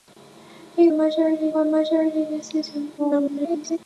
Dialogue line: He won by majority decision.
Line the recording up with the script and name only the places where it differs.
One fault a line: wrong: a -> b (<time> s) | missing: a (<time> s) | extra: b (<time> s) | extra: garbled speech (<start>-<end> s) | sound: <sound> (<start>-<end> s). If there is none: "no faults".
wrong: won -> majority (0.9 s)
extra: garbled speech (3.0-3.8 s)